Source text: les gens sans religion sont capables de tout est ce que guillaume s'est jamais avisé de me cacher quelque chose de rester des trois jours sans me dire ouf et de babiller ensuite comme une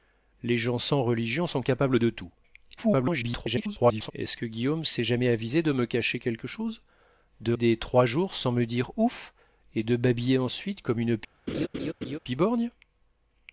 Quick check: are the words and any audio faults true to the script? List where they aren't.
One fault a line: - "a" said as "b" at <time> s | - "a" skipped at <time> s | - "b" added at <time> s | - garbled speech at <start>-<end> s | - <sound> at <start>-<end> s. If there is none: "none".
- garbled speech at 2.8-4.1 s
- "rester" skipped at 7.5 s
- laugh at 11.5-12.2 s